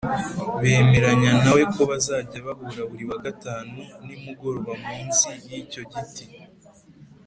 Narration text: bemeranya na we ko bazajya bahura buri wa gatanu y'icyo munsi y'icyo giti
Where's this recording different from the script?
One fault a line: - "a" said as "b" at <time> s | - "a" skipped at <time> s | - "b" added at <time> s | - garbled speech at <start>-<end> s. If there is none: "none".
- "y'icyo" said as "nimugoroba" at 4.0 s